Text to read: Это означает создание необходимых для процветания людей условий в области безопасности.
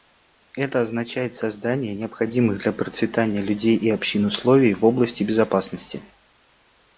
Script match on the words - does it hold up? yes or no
no